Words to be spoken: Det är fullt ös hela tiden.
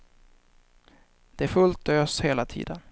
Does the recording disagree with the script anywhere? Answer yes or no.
no